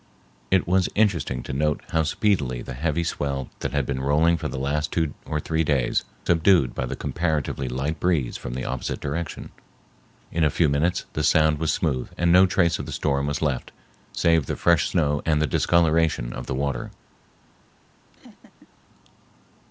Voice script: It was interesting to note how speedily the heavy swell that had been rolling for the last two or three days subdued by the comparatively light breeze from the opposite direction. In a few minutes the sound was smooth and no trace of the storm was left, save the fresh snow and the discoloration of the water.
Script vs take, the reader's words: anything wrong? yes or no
no